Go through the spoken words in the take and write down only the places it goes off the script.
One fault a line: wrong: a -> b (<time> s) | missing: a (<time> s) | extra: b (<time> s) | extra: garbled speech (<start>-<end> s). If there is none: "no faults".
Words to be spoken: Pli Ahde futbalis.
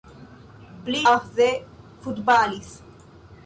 no faults